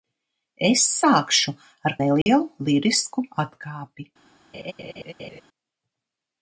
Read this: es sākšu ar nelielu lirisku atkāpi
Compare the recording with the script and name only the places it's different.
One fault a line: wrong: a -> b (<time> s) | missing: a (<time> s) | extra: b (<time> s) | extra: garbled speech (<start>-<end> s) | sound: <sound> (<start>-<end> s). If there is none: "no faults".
sound: dropout (2.2-2.3 s)
sound: laugh (4.5-5.4 s)